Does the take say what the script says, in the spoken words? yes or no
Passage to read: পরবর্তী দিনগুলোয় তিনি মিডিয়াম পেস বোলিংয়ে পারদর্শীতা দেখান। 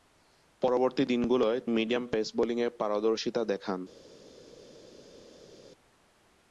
no